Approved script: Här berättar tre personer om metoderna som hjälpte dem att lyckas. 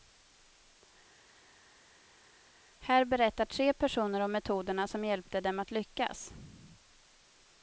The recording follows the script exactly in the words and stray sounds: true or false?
true